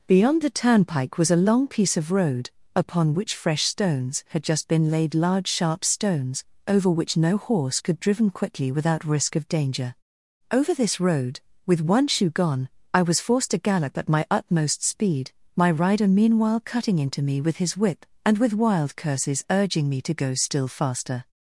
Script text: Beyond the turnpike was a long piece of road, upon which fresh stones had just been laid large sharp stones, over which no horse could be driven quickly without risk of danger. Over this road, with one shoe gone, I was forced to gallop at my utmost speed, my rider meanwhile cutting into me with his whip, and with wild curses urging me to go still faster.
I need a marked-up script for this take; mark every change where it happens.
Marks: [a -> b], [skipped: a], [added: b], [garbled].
Beyond the turnpike was a long piece of road, upon which fresh stones had just been laid large sharp stones, over which no horse could [skipped: be] driven quickly without risk of danger. Over this road, with one shoe gone, I was forced to gallop at my utmost speed, my rider meanwhile cutting into me with his whip, and with wild curses urging me to go still faster.